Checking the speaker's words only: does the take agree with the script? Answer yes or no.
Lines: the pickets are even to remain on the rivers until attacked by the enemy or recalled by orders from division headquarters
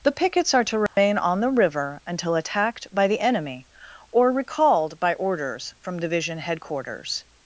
no